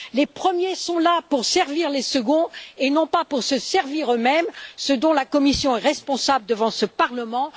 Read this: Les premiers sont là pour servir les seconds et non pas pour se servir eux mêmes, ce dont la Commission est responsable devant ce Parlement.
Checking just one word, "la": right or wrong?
right